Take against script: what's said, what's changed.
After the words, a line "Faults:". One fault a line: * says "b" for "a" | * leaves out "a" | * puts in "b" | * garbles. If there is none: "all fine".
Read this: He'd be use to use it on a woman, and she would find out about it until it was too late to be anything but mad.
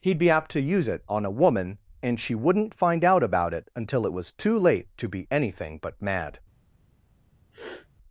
He'd be apt to use it on a woman, and she wouldn't find out about it until it was too late to be anything but mad.
Faults:
* says "apt" for "use"
* says "wouldn't" for "would"